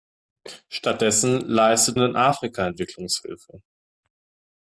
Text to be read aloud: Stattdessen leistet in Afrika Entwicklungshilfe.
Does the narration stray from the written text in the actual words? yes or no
no